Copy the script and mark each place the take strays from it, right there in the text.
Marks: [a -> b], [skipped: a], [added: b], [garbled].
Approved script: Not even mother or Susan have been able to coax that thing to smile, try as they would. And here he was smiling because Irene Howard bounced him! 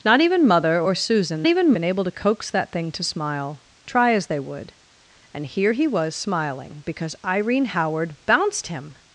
Not even mother or Susan [have -> even] been able to coax that thing to smile, try as they would. And here he was smiling because Irene Howard bounced him!